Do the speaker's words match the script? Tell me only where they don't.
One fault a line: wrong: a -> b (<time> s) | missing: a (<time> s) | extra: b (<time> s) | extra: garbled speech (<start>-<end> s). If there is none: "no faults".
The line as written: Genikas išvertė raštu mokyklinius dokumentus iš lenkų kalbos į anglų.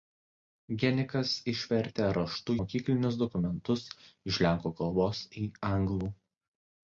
no faults